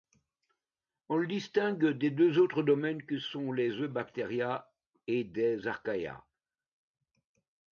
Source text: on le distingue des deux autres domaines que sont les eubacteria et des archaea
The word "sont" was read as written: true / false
true